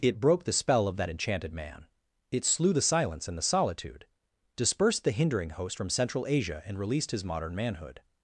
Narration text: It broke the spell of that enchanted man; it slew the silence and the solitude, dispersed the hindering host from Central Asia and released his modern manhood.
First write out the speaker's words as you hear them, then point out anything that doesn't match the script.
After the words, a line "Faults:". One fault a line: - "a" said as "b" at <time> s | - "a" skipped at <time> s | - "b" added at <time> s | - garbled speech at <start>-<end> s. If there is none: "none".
It broke the spell of that enchanted man; it slew the silence and the solitude, dispersed the hindering host from Central Asia and released his modern manhood.
Faults:
none